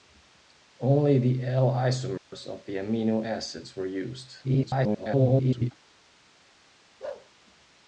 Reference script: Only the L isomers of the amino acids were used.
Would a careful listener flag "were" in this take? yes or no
no